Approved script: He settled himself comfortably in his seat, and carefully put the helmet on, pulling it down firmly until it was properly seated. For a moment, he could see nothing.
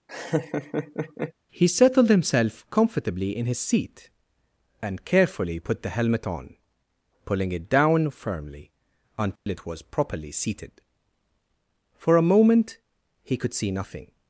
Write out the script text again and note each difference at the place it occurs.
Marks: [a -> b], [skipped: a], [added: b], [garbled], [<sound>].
[laugh] He settled himself comfortably in his seat, and carefully put the helmet on, pulling it down firmly until [dropout] it was properly seated. For a moment, he could see nothing.